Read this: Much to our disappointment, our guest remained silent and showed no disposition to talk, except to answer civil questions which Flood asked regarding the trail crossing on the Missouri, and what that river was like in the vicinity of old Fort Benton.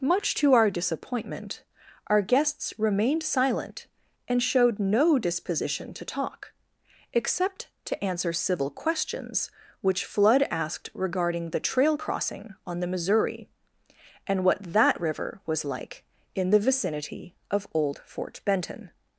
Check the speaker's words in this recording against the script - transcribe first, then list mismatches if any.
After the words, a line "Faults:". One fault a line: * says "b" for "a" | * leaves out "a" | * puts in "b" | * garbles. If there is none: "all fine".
Much to our disappointment, our guests remained silent and showed no disposition to talk, except to answer civil questions which Flood asked regarding the trail crossing on the Missouri, and what that river was like in the vicinity of old Fort Benton.
Faults:
* says "guests" for "guest"